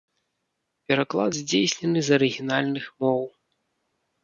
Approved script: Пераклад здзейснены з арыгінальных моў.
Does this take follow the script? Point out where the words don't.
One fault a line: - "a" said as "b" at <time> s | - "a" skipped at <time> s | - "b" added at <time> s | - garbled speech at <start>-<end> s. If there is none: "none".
none